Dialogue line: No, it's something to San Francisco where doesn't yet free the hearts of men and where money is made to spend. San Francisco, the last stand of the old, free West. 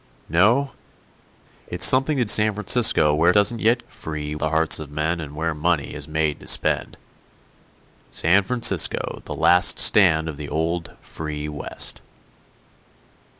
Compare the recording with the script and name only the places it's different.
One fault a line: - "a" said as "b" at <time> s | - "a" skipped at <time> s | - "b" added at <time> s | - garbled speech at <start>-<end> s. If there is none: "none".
none